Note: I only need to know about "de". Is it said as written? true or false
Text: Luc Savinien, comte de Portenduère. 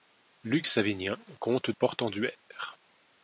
false